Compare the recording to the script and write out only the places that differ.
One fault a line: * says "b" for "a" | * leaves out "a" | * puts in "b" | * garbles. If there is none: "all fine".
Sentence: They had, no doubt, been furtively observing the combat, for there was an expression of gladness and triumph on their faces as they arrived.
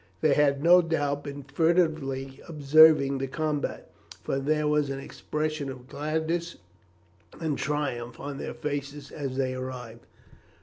all fine